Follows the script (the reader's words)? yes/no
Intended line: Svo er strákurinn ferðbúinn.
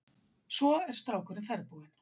yes